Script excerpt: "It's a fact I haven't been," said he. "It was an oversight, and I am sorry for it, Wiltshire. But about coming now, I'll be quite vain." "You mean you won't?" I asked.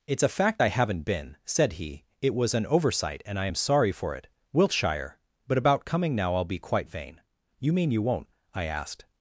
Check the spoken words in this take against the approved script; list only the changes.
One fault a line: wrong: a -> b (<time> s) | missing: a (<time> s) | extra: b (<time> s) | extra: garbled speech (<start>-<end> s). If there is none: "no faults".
no faults